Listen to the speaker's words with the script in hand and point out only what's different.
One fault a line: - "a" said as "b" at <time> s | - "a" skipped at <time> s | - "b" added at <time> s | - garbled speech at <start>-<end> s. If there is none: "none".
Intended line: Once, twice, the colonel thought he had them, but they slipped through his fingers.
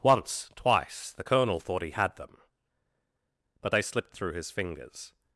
none